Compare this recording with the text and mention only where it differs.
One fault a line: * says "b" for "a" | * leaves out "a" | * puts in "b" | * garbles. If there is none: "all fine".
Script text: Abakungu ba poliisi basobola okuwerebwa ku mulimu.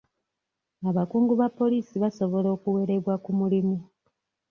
all fine